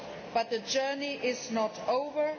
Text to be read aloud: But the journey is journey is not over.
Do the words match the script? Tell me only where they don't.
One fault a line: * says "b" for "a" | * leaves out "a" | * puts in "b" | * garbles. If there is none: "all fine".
* leaves out "journey is"